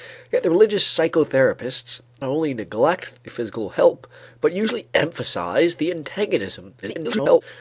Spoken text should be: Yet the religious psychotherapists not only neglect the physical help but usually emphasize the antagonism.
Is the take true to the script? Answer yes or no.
no